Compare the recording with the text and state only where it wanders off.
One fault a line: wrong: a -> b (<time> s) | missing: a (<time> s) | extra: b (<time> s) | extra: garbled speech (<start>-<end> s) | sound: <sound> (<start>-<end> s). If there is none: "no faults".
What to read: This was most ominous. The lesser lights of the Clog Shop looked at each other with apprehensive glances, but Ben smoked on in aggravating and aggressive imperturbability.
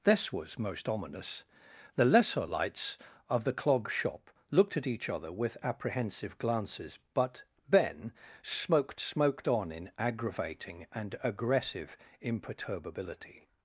extra: smoked (9.0 s)